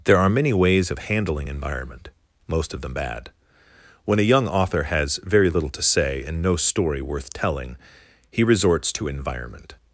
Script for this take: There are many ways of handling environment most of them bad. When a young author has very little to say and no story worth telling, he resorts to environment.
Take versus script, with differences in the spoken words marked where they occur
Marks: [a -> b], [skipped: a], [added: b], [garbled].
There are many ways of handling environment most of them bad. When a young author has very little to say and no story worth telling, he resorts to environment.